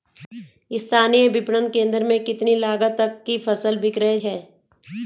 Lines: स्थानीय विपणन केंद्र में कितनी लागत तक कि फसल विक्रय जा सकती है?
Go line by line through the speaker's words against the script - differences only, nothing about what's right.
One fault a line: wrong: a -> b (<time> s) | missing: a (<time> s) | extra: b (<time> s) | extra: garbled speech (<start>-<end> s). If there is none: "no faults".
missing: जा सकती (4.2 s)